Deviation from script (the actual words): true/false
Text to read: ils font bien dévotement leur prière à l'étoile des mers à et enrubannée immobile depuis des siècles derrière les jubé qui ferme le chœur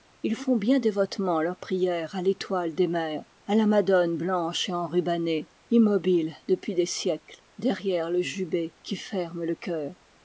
true